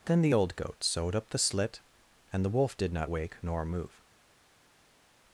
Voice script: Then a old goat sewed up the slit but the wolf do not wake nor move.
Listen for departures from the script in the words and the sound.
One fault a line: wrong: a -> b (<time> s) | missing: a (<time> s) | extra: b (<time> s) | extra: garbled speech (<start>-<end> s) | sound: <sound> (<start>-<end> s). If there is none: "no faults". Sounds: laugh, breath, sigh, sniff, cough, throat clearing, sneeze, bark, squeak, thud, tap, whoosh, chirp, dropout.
wrong: a -> the (0.2 s)
wrong: but -> and (2.3 s)
wrong: do -> did (2.8 s)